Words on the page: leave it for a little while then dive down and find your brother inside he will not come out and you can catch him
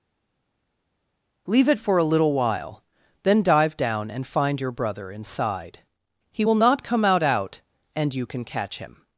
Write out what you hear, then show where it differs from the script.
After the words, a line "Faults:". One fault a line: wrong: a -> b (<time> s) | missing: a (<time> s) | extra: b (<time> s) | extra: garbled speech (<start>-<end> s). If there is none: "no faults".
leave it for a little while then dive down and find your brother inside he will not come out out and you can catch him
Faults:
extra: out (7.2 s)